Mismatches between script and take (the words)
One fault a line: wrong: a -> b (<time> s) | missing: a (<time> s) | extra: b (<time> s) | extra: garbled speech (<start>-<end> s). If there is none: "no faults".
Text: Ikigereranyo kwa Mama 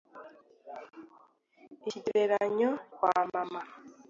no faults